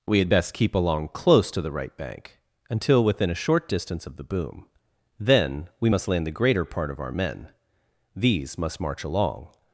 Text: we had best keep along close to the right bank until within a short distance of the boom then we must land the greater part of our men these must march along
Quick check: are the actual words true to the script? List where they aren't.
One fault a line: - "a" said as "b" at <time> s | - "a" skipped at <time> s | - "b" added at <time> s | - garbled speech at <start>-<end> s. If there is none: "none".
none